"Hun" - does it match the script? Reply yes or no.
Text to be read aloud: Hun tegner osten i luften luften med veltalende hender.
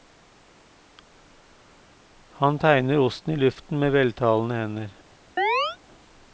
no